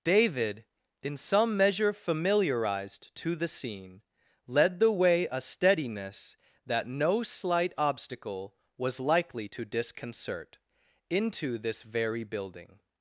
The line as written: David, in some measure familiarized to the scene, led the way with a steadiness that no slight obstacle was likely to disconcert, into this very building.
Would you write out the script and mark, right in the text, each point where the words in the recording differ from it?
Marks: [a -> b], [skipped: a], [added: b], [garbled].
David, in some measure familiarized to the scene, led the way [skipped: with] a steadiness that no slight obstacle was likely to disconcert, into this very building.